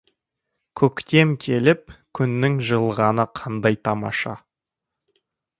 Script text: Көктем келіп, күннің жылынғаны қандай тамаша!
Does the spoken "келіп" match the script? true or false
true